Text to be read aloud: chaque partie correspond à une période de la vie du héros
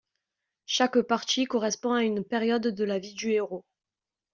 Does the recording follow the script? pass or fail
pass